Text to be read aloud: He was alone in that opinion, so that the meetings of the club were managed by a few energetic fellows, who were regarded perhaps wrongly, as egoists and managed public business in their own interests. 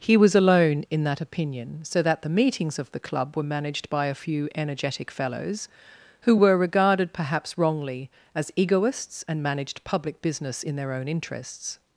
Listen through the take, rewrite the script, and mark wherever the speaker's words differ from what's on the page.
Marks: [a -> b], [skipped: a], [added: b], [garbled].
He was alone in that opinion, so that the meetings of the club were managed by a few energetic fellows, who were regarded perhaps wrongly, as egoists and managed public business in their own interests.